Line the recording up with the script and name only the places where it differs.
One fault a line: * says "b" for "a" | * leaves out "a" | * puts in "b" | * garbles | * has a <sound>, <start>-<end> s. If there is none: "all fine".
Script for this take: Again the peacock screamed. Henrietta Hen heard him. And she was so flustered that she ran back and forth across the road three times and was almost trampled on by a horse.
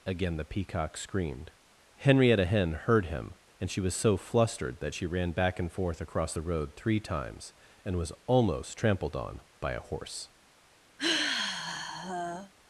* has a sigh, 11.0-12.5 s